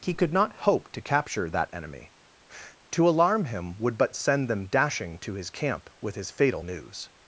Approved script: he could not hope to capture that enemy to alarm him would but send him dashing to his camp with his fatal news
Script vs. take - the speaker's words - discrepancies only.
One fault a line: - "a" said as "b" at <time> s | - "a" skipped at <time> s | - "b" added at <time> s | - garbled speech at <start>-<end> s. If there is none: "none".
- "him" said as "them" at 4.5 s